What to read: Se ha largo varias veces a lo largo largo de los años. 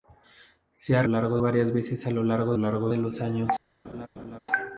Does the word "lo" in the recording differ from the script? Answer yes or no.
no